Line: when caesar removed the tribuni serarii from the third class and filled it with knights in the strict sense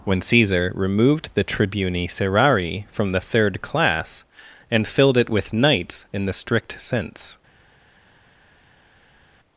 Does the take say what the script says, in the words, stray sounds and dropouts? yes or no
yes